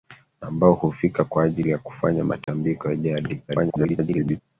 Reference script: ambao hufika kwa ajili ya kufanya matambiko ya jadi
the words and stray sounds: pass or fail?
fail